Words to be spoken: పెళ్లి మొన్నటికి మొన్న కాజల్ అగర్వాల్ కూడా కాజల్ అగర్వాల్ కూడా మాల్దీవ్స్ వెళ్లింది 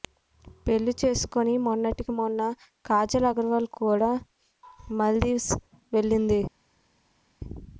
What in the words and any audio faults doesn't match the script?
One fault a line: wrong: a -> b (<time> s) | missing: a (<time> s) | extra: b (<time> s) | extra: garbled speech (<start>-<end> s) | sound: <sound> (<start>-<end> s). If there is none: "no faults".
extra: చేసుకుని (1.0 s)
missing: కాజల్ అగర్వాల్ కూడా (4.1 s)